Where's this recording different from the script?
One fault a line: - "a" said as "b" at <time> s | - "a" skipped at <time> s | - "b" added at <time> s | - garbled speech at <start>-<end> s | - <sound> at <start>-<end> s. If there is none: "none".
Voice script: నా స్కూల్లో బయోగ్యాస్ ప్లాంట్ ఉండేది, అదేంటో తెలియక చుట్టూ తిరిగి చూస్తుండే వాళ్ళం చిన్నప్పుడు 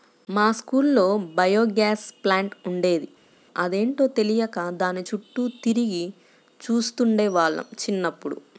- "నా" said as "మా" at 0.3 s
- "దాని" added at 4.8 s